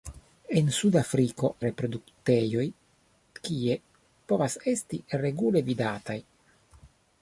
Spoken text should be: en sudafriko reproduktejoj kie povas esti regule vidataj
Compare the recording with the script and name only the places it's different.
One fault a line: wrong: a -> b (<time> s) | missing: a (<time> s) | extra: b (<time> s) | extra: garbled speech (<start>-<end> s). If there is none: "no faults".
no faults